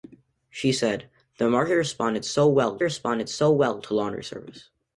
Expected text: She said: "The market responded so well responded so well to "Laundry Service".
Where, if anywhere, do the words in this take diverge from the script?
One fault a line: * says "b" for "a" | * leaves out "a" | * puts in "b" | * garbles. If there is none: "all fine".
all fine